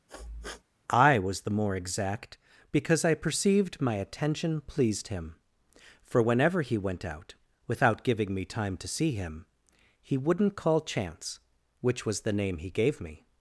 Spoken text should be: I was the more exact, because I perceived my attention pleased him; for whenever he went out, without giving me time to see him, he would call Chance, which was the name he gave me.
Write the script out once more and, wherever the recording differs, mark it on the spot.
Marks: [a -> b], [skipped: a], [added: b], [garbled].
I was the more exact, because I perceived my attention pleased him; for whenever he went out, without giving me time to see him, he [would -> wouldn't] call Chance, which was the name he gave me.